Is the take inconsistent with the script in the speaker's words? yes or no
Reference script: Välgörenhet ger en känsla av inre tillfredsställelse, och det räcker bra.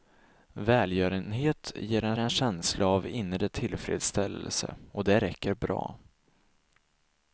yes